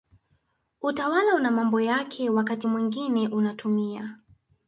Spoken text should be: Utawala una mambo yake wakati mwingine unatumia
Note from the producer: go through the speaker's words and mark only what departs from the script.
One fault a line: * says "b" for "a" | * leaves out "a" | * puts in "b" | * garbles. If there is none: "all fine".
all fine